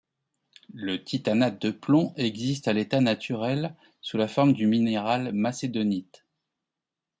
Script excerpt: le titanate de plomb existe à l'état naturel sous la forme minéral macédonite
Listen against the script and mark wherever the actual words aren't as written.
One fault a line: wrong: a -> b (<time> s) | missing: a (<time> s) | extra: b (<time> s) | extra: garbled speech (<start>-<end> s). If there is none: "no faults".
extra: du (4.5 s)